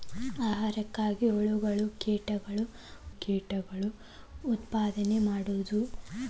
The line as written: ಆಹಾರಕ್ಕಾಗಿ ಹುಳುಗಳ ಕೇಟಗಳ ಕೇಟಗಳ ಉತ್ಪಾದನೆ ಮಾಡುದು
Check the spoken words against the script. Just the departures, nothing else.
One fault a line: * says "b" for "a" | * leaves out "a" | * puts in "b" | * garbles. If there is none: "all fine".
all fine